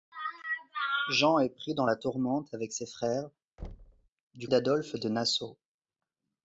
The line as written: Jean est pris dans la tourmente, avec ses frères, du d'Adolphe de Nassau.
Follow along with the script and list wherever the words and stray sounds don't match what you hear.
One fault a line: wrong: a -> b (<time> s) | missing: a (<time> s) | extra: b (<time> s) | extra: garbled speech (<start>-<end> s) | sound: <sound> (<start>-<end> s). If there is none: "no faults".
sound: thud (3.6-4.1 s)